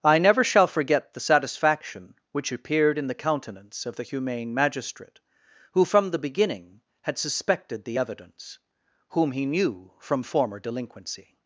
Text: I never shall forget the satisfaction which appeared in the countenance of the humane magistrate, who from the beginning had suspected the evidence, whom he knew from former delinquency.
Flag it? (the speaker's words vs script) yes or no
no